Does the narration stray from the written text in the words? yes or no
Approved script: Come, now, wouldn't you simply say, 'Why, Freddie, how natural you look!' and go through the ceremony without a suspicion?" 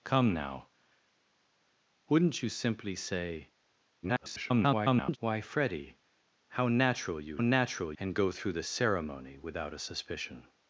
yes